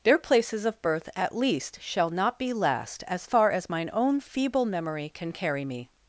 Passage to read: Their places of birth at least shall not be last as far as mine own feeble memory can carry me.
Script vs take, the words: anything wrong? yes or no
no